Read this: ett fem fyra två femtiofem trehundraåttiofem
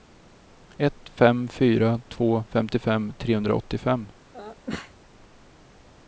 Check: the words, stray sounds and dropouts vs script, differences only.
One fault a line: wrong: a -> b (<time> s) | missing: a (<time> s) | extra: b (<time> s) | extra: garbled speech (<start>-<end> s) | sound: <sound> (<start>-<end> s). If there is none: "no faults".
sound: sneeze (4.3-4.9 s)